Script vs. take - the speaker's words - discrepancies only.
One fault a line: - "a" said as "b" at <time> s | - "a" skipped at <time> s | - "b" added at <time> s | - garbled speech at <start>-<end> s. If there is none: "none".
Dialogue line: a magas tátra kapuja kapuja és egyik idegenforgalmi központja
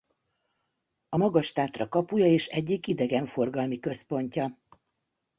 - "kapuja" skipped at 2.3 s